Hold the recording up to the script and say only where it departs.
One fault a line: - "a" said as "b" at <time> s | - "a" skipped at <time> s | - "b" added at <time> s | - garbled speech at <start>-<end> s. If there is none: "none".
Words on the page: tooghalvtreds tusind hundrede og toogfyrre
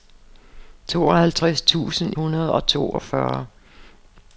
none